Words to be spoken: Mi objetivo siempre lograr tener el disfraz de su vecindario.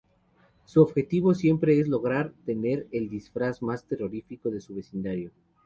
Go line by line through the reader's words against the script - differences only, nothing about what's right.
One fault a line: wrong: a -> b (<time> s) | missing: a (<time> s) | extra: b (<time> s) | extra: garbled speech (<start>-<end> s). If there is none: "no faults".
wrong: Mi -> Su (0.7 s)
extra: es (1.8 s)
extra: más terrorífico (3.6 s)